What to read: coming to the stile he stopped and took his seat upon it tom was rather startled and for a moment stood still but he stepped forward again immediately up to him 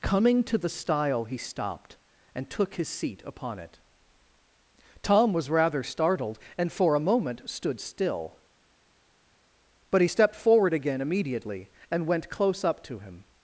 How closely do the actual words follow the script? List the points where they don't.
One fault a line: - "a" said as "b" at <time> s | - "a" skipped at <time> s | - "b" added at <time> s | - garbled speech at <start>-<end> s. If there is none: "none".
- "and went close" added at 11.9 s